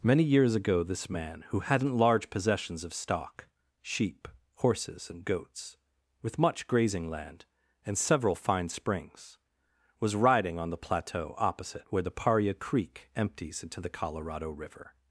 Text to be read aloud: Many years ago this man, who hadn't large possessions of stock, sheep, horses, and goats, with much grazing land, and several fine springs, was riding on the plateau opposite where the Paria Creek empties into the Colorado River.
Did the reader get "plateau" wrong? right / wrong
right